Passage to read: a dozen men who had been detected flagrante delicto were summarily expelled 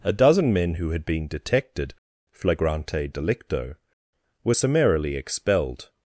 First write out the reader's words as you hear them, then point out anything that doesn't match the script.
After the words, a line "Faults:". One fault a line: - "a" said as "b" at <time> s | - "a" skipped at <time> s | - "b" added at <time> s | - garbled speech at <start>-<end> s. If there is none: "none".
a dozen men who had been detected flagrante delicto were summarily expelled
Faults:
none